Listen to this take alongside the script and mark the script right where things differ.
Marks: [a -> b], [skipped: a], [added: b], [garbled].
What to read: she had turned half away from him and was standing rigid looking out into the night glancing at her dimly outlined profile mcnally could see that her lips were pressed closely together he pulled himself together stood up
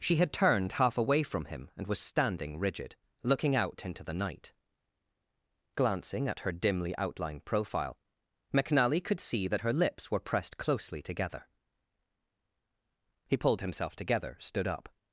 she had turned half away from him and was standing rigid looking out into the night glancing at her dimly outlined profile mcnally could see that her lips were pressed closely together he pulled himself together stood up